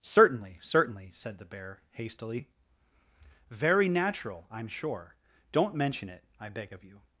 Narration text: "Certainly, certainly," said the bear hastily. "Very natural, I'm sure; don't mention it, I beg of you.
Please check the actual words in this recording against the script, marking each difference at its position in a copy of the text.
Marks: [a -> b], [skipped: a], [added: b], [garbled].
"Certainly, certainly," said the bear hastily. "Very natural, I'm sure; don't mention it, I beg of you.